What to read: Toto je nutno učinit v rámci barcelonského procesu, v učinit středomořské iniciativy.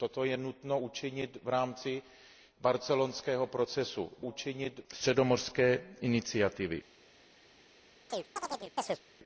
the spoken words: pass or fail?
pass